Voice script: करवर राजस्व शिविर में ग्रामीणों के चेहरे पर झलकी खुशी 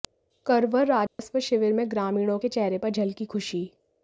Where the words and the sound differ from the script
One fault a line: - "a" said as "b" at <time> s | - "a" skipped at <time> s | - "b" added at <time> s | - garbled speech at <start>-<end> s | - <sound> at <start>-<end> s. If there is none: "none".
- dropout at 1.1-1.2 s